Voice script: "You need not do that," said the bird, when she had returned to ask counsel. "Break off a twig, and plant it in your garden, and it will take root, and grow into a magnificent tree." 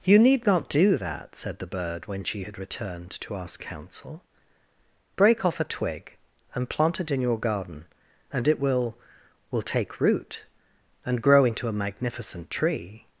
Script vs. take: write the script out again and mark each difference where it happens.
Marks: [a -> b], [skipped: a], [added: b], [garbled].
"You need not do that," said the bird, when she had returned to ask counsel. "Break off a twig, and plant it in your garden, and it will [added: will] take root, and grow into a magnificent tree."